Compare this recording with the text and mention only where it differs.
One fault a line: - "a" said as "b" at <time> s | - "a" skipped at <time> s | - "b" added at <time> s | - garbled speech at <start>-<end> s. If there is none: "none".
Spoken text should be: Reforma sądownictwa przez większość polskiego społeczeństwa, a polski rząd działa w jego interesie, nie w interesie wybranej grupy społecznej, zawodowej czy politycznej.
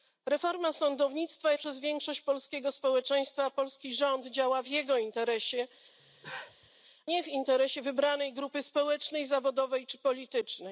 none